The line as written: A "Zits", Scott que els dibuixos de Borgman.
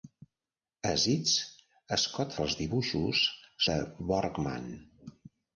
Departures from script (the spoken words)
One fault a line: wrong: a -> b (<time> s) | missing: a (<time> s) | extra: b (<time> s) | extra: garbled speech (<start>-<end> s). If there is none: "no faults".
no faults